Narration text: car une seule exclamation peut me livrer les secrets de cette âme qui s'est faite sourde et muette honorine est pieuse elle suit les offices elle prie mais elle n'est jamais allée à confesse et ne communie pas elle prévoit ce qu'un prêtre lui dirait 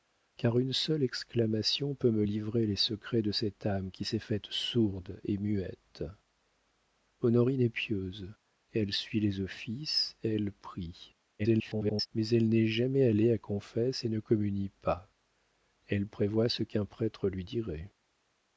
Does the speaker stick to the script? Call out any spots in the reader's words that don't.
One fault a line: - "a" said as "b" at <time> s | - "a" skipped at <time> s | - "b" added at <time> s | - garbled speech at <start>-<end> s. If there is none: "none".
- garbled speech at 11.4-12.1 s